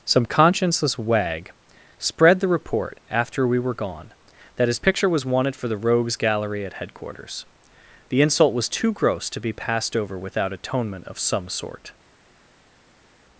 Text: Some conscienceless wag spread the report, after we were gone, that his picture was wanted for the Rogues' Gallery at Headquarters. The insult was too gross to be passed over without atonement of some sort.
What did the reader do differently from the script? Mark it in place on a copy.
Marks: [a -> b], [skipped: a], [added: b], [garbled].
Some conscienceless wag spread the report, after we were gone, that his picture was wanted for the Rogues' Gallery at Headquarters. The insult was too gross to be passed over without atonement of some sort.